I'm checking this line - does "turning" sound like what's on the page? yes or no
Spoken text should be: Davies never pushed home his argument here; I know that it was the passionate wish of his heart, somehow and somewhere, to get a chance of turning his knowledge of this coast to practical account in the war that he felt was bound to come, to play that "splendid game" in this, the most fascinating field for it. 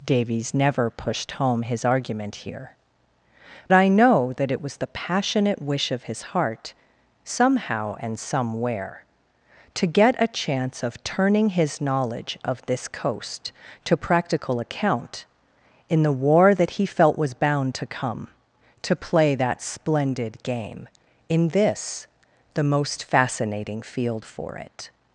yes